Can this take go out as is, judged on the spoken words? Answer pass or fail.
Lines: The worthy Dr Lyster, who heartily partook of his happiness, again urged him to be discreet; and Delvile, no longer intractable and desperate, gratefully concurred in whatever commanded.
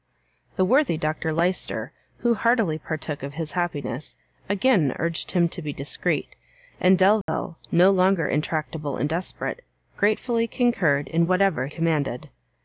pass